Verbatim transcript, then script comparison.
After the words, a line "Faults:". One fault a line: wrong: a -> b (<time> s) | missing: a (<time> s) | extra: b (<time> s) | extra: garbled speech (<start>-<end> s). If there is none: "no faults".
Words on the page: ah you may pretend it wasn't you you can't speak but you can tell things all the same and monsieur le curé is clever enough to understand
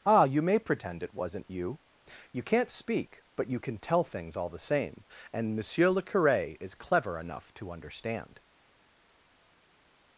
ah you may pretend it wasn't you you can't speak but you can tell things all the same and monsieur le curé is clever enough to understand
Faults:
no faults